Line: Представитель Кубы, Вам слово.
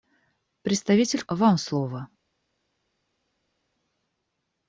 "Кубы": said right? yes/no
no